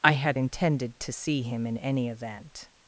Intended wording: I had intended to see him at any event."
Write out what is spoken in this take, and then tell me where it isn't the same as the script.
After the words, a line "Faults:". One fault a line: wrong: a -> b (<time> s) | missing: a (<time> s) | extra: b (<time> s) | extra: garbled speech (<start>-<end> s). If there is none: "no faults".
I had intended to see him in any event."
Faults:
wrong: at -> in (1.7 s)